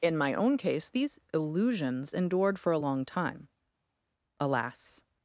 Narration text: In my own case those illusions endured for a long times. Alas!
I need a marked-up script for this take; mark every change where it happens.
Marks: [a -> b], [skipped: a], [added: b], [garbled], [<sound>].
In my own case [those -> these] illusions endured for a long [times. -> time] Alas!